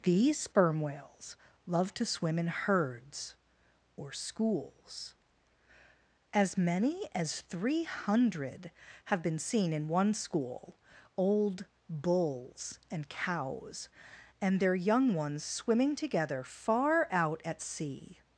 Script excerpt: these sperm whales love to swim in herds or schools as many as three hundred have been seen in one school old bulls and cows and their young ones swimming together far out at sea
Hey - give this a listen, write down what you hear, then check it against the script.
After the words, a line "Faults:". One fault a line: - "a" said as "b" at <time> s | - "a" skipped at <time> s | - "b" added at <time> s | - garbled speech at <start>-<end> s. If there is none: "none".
these sperm whales love to swim in herds or schools as many as three hundred have been seen in one school old bulls and cows and their young ones swimming together far out at sea
Faults:
none